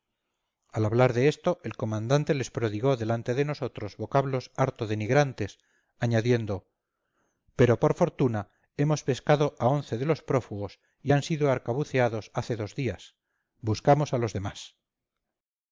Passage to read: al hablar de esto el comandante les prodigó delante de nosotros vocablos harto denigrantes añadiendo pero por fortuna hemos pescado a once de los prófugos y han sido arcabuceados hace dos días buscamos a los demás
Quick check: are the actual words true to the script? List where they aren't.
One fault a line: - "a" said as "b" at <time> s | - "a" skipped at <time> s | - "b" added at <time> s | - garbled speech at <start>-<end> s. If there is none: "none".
none